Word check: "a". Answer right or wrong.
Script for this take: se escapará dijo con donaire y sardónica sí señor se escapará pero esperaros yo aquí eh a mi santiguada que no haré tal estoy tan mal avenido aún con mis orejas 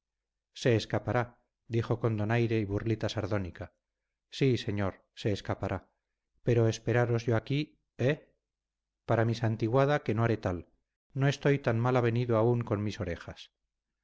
wrong